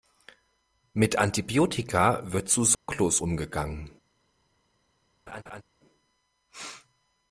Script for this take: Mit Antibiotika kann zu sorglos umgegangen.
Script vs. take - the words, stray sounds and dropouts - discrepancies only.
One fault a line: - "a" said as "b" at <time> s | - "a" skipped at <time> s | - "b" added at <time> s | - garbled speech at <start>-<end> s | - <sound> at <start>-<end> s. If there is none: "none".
- "kann" said as "wird" at 2.3 s
- dropout at 2.7-2.9 s
- laugh at 5.3-5.6 s